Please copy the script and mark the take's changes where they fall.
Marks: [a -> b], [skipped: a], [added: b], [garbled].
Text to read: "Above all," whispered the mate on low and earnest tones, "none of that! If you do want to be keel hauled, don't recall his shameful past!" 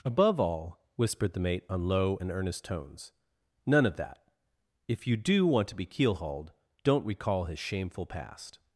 "Above all," whispered the mate on low and earnest tones, "none of that! If you do want to be keel hauled, don't recall his shameful past!"